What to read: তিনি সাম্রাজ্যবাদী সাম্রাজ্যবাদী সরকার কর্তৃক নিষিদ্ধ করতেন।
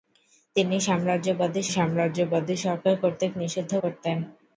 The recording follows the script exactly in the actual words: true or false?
true